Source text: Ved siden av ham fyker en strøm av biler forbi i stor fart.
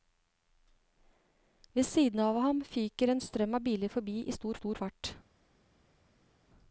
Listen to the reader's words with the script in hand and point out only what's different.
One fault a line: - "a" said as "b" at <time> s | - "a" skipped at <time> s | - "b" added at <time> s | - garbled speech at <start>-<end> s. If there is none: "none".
- "stor" added at 4.5 s